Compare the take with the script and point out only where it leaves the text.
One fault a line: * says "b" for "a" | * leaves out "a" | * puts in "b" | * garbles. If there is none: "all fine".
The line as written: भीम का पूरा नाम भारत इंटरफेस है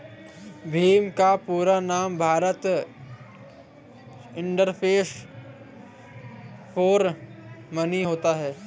* puts in "फॉर मनी होता"